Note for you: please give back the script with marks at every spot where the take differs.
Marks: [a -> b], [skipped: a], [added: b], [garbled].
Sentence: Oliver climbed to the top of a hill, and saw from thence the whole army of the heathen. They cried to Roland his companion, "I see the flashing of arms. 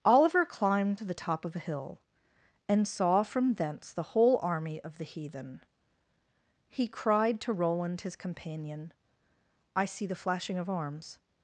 Oliver climbed to the top of a hill, and saw from thence the whole army of the heathen. [They -> He] cried to Roland his companion, "I see the flashing of arms.